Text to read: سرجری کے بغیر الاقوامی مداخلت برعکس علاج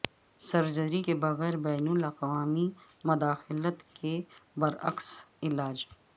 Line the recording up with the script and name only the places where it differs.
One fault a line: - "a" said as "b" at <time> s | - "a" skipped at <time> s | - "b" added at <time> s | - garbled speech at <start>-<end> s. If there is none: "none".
- "بین" added at 1.6 s
- "کے" added at 3.9 s